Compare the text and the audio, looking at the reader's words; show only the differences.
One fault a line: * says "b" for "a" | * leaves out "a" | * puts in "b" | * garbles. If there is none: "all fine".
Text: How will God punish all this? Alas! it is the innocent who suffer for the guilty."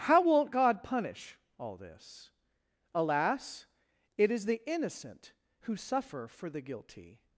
* says "won't" for "will"